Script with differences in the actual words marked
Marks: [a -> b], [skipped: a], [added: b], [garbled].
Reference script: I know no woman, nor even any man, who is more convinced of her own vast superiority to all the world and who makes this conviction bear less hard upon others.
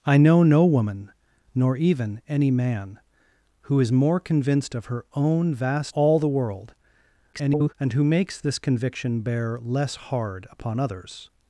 I know no woman, nor even any man, who is more convinced of her own vast [skipped: superiority to] all the world [garbled] and who makes this conviction bear less hard upon others.